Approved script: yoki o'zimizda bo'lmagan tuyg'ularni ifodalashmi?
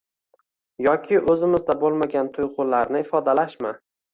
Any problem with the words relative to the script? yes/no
no